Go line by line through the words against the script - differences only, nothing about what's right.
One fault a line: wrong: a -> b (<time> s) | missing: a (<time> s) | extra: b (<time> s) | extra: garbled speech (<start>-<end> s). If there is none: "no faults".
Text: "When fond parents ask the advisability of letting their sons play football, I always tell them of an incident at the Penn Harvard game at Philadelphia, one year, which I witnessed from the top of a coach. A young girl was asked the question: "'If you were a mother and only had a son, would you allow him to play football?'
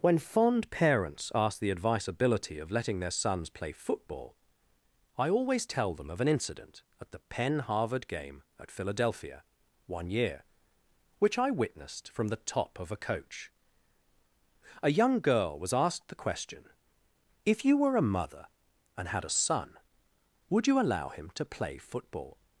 missing: only (19.1 s)